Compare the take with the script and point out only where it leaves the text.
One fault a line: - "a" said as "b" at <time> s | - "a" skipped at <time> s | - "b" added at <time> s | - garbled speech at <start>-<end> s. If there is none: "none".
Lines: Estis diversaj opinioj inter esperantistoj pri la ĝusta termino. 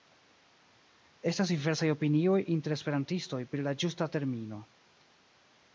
- "Estis" said as "Estas" at 1.3 s